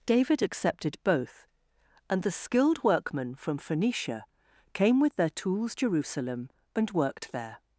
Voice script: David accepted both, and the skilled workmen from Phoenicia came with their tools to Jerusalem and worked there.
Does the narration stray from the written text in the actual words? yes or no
yes